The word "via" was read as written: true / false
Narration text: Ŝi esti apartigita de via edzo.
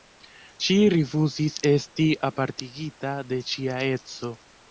false